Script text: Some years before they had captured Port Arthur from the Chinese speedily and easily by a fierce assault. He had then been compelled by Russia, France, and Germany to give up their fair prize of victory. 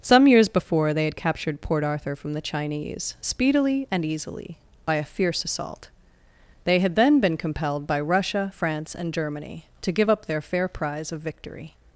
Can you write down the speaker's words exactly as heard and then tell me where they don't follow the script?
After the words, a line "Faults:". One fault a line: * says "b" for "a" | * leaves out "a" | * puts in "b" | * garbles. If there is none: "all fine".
Some years before they had captured Port Arthur from the Chinese speedily and easily by a fierce assault. They had then been compelled by Russia, France, and Germany to give up their fair prize of victory.
Faults:
* says "They" for "He"